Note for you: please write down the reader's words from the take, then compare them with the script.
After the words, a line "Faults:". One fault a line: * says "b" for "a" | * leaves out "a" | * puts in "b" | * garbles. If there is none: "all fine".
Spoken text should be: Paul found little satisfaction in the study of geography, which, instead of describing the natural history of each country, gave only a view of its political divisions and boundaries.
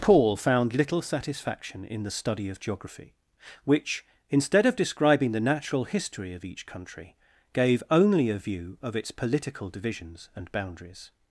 Paul found little satisfaction in the study of geography, which, instead of describing the natural history of each country, gave only a view of its political divisions and boundaries.
Faults:
all fine